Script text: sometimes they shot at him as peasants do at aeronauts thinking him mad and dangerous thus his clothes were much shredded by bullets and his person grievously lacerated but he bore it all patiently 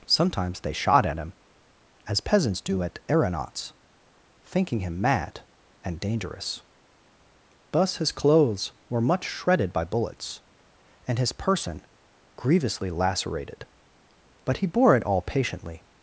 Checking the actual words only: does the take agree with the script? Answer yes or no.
yes